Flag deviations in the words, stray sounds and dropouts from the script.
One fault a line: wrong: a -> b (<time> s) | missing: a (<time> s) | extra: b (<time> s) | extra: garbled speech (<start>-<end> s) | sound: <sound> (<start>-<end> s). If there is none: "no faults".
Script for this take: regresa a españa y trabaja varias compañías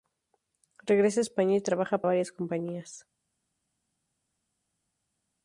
no faults